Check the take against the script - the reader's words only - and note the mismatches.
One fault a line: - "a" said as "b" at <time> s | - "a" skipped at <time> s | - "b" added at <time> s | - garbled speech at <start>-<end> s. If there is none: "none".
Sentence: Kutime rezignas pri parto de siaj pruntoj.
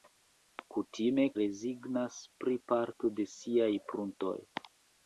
none